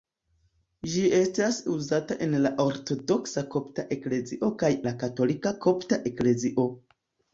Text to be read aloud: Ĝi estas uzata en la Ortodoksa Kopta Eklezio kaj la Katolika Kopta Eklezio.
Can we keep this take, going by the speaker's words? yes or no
yes